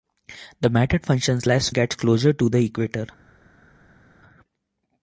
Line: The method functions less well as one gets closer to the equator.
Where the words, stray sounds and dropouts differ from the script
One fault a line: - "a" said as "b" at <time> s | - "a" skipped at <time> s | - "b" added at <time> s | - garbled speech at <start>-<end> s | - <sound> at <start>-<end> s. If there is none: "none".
- "well as one" skipped at 1.7 s